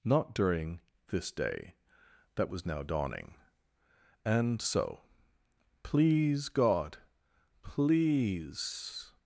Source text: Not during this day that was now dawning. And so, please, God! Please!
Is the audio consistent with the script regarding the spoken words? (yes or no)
yes